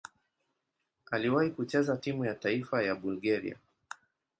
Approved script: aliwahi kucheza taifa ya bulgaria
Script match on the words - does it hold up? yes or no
no